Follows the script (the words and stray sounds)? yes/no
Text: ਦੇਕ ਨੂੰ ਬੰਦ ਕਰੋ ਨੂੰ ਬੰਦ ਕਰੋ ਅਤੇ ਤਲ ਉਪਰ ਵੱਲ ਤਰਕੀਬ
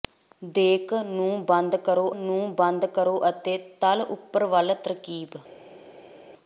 yes